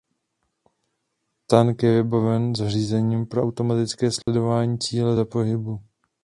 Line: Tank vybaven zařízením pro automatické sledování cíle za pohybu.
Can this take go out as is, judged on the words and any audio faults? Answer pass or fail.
fail